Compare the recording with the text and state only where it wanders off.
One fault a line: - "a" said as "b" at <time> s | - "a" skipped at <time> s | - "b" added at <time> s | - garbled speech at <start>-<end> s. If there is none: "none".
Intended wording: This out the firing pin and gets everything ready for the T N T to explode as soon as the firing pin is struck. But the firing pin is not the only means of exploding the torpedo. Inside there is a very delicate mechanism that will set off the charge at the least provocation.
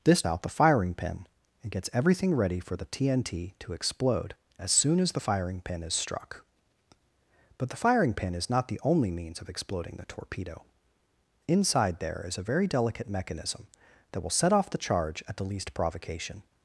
none